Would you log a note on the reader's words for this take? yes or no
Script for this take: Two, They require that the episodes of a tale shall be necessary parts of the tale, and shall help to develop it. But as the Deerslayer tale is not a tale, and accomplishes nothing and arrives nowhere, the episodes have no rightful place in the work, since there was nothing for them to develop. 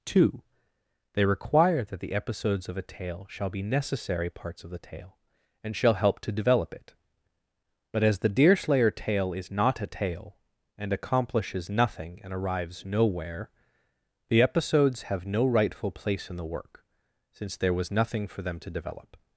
no